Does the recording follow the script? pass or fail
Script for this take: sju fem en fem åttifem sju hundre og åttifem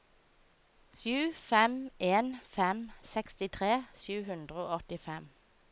fail